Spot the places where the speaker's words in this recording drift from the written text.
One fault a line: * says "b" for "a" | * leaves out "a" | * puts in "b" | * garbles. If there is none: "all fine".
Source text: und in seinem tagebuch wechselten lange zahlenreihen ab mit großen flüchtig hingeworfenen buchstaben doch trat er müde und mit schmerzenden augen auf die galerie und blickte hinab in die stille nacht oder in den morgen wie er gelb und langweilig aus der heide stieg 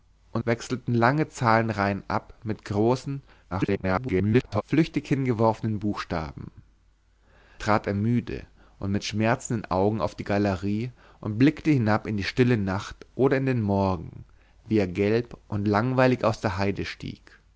* leaves out "in seinem tagebuch"
* garbles
* leaves out "doch"